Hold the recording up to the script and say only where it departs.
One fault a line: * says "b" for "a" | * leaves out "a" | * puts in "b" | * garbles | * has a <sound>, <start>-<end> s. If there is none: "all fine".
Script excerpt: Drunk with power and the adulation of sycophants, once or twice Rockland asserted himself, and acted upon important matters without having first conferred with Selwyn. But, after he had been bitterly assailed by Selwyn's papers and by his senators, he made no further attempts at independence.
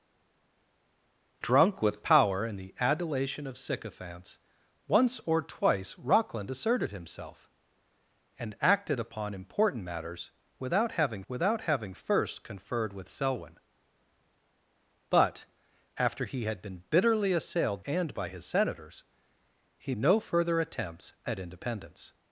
* puts in "without having"
* leaves out "by Selwyn's papers"
* leaves out "made"